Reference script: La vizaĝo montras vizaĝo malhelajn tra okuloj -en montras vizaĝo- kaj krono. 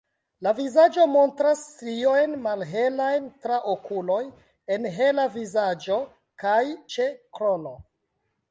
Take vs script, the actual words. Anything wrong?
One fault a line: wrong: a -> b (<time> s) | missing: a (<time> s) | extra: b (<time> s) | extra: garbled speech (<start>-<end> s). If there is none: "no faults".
wrong: vizaĝo -> striojn (1.7 s)
wrong: montras -> hela (5.0 s)
extra: ĉe (7.0 s)